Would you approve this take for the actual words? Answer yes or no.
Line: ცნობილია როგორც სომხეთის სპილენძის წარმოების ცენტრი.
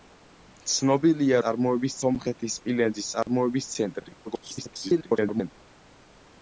no